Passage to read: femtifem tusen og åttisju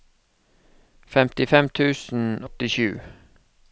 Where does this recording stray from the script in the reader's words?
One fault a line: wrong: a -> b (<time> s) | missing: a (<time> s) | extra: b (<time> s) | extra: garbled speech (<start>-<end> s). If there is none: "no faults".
missing: og (2.2 s)